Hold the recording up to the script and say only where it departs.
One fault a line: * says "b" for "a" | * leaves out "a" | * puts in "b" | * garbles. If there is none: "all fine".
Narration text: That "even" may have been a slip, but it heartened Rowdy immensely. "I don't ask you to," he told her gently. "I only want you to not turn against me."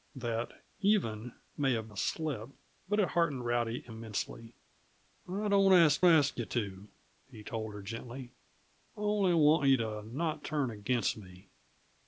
* leaves out "been"
* puts in "ask"